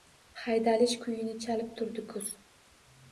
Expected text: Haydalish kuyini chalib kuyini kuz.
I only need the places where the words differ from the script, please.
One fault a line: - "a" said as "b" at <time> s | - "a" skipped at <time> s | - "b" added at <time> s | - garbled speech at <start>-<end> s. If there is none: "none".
- "kuyini" said as "turdi" at 1.8 s